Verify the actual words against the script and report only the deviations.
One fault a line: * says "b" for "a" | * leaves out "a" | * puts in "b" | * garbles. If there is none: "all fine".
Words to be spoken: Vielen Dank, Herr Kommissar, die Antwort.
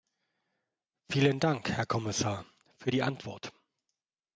* puts in "für"